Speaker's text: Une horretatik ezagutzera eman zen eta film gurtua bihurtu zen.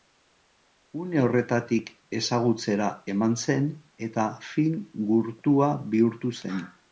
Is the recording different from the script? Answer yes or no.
no